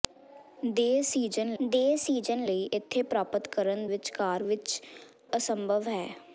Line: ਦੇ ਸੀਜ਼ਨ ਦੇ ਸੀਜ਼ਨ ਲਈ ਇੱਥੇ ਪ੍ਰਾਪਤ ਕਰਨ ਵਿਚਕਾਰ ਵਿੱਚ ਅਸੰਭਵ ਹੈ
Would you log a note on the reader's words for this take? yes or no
no